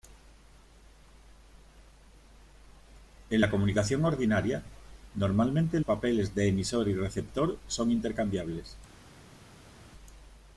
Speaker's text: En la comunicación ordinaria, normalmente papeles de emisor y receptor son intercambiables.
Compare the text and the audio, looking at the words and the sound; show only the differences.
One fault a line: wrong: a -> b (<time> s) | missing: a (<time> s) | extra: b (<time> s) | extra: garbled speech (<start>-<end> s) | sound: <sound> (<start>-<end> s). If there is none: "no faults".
no faults